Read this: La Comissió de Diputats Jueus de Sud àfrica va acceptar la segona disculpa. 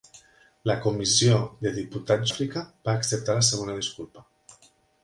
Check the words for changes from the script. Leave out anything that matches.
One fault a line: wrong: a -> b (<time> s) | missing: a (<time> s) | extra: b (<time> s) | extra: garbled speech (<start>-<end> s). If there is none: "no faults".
missing: Jueus de Sud (2.3 s)